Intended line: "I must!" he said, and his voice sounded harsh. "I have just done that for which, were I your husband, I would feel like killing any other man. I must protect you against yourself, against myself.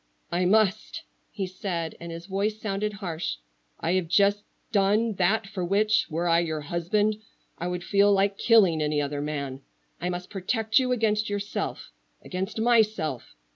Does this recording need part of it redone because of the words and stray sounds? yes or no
no